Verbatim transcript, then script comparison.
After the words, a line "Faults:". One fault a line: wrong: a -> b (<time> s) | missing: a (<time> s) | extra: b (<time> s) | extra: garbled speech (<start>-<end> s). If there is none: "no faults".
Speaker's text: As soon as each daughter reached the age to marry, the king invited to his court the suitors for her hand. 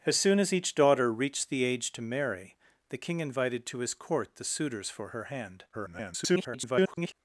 As soon as each daughter reached the age to marry, the king invited to his court the suitors for her hand. [garbled]
Faults:
extra: garbled speech (5.7-7.1 s)